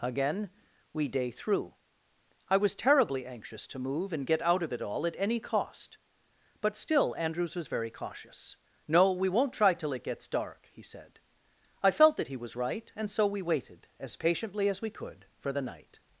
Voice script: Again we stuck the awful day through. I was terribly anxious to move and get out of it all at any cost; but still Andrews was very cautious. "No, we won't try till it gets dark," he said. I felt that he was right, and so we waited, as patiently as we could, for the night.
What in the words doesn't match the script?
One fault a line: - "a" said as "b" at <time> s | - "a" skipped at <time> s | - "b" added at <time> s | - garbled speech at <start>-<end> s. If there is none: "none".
- "stuck the awful" skipped at 1.1 s